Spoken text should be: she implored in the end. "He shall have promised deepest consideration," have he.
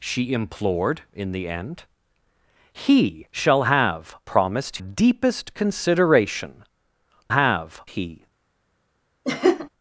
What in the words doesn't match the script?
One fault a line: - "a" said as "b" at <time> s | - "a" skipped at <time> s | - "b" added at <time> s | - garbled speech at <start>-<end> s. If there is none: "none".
none